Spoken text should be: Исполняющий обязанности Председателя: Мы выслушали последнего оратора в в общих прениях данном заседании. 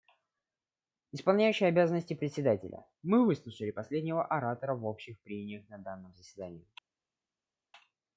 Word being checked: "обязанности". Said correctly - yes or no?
yes